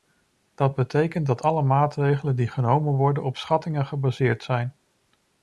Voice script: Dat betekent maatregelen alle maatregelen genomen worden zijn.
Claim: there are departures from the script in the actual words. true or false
true